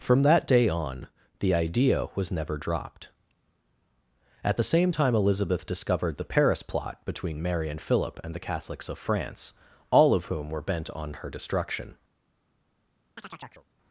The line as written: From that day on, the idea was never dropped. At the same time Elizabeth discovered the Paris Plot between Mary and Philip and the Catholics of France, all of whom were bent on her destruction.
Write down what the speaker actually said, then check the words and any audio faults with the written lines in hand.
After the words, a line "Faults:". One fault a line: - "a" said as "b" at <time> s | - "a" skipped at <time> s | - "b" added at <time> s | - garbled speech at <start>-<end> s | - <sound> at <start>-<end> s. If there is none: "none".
From that day on, the idea was never dropped. At the same time Elizabeth discovered the Paris Plot between Mary and Philip and the Catholics of France, all of whom were bent on her destruction.
Faults:
- chirp at 13.2-13.7 s